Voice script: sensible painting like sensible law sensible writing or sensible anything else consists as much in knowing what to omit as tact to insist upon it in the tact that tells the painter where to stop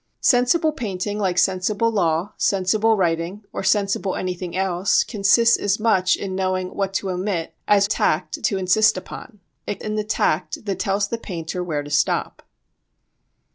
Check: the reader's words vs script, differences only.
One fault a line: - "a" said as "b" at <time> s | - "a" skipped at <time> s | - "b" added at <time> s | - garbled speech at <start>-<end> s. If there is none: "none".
none